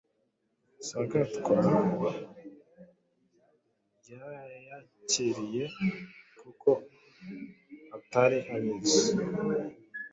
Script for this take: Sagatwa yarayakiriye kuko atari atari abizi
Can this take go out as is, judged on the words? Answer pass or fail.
fail